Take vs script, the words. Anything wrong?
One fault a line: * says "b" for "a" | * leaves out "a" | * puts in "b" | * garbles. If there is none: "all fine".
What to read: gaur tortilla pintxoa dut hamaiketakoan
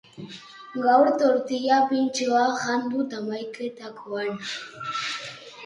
* puts in "jan"